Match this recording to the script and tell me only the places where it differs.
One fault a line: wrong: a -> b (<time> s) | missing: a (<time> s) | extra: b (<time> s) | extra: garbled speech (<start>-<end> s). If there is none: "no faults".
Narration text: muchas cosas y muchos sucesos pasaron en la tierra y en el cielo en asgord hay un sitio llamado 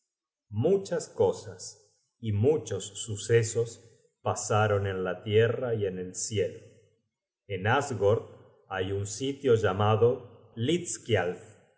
no faults